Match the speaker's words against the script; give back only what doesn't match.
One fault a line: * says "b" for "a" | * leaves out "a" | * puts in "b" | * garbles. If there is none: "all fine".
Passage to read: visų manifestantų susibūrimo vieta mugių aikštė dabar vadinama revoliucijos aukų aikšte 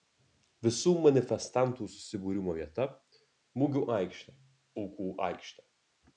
* leaves out "dabar vadinama revoliucijos"